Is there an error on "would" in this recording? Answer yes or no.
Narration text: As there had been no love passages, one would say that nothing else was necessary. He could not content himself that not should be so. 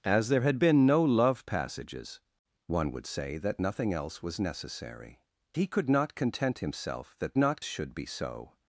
no